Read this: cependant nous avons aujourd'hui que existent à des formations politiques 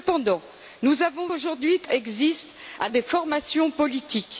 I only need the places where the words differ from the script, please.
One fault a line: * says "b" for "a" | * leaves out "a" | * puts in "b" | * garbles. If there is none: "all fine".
all fine